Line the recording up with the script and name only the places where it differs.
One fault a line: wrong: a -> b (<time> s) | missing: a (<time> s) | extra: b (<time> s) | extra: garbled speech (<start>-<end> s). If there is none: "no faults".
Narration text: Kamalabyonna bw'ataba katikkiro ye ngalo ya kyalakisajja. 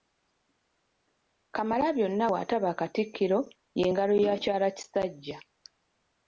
no faults